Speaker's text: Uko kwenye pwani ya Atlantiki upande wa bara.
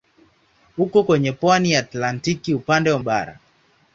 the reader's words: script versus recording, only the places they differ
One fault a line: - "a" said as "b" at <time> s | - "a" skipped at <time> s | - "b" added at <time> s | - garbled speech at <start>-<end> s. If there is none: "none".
none